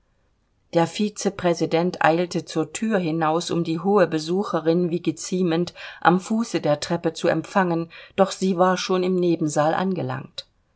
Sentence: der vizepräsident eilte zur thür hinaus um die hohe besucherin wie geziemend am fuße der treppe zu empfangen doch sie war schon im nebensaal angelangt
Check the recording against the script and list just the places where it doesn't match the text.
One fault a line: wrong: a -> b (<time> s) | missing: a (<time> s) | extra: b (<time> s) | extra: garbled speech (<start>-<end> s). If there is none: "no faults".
no faults